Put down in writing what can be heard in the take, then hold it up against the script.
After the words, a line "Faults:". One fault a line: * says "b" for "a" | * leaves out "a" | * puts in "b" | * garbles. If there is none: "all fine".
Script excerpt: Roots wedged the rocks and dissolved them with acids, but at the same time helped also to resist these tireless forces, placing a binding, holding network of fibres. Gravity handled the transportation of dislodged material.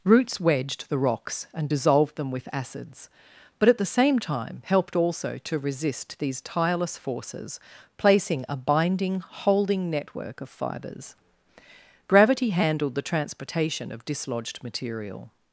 Roots wedged the rocks and dissolved them with acids, but at the same time helped also to resist these tireless forces, placing a binding, holding network of fibres. Gravity handled the transportation of dislodged material.
Faults:
all fine